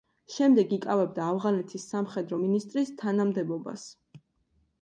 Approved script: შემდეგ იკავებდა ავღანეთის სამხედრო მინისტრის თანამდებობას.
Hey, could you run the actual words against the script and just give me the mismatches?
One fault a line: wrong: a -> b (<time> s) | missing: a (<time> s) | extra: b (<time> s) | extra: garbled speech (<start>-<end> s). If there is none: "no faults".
no faults